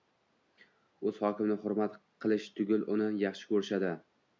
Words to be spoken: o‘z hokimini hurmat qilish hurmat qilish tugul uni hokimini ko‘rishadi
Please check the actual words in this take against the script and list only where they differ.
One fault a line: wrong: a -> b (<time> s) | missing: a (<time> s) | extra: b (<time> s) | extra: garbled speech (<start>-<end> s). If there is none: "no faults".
missing: hurmat qilish (2.5 s)
wrong: hokimini -> yaxshi (3.3 s)